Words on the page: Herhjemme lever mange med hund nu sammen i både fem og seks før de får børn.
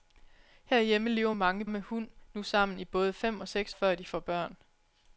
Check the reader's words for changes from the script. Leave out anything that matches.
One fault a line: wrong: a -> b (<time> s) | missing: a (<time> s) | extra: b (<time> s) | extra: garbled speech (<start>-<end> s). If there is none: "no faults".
no faults